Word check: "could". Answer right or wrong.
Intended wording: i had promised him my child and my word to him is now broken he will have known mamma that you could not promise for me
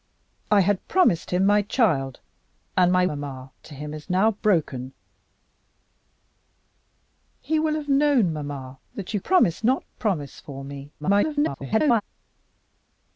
wrong